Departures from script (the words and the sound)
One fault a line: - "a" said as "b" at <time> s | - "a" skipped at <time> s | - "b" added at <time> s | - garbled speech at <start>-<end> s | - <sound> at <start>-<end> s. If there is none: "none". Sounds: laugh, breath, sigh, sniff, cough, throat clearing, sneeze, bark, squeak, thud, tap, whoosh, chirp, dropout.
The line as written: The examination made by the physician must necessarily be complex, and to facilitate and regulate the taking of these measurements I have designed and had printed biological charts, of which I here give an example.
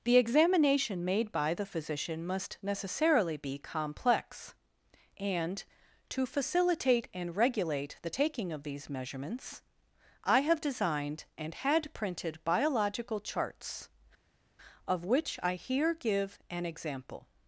none